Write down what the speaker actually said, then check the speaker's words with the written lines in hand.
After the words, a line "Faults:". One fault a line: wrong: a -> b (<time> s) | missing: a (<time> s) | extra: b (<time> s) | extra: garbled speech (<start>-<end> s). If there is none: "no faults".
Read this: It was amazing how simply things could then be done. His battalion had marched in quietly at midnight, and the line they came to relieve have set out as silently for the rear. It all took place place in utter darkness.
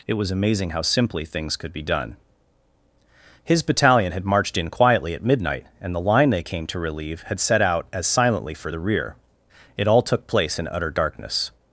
It was amazing how simply things could be done. His battalion had marched in quietly at midnight, and the line they came to relieve had set out as silently for the rear. It all took place in utter darkness.
Faults:
missing: then (1.7 s)
wrong: have -> had (7.2 s)
missing: place (10.6 s)